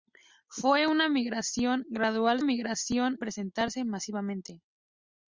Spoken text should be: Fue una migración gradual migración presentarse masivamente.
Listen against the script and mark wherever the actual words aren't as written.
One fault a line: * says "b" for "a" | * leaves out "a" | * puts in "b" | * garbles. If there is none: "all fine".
all fine